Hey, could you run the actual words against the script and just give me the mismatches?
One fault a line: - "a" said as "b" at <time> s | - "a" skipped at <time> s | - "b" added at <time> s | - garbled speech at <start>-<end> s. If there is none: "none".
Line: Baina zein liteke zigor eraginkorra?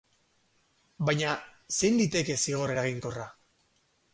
none